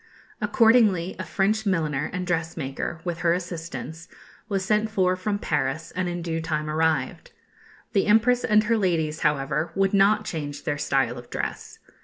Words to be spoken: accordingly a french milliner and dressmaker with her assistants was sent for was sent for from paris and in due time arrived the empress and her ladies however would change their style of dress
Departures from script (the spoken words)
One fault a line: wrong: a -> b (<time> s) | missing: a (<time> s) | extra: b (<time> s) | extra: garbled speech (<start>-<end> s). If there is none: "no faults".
missing: was sent for (5.2 s)
extra: not (9.9 s)